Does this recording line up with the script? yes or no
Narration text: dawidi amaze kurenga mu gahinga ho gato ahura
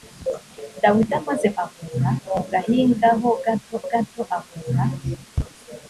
no